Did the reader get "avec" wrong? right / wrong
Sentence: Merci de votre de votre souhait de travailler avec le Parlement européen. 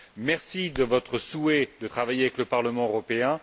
right